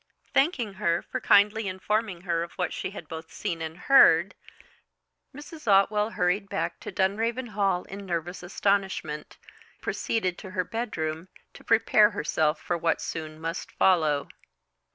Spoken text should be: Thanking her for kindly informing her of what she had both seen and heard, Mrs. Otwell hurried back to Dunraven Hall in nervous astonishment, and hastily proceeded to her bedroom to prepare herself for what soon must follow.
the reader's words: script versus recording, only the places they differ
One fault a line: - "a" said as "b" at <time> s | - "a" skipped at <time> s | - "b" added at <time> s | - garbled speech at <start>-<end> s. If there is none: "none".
- "and hastily" skipped at 9.4 s